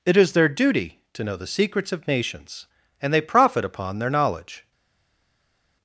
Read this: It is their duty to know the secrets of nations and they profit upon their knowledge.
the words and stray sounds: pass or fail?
pass